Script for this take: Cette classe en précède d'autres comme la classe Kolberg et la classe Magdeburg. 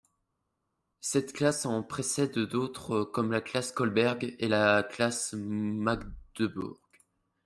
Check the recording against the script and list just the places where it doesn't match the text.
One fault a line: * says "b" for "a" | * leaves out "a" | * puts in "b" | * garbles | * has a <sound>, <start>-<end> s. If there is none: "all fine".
all fine